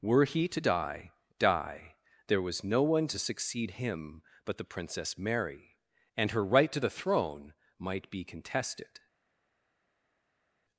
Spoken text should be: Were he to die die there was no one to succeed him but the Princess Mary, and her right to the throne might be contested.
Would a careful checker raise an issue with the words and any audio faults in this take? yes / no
no